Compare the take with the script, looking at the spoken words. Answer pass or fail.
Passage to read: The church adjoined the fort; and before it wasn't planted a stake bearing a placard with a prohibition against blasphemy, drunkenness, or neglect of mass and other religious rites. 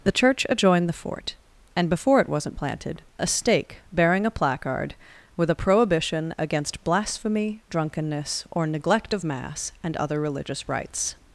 pass